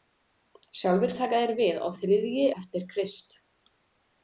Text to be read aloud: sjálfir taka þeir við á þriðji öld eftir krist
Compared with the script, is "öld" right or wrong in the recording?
wrong